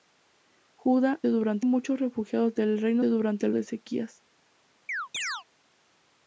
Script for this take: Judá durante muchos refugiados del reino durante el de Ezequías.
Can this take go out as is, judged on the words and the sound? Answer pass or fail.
fail